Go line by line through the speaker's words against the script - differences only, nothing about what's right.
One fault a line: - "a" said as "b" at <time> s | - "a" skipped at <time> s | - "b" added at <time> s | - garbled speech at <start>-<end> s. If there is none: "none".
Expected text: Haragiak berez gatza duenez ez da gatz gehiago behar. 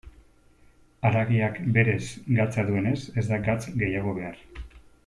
none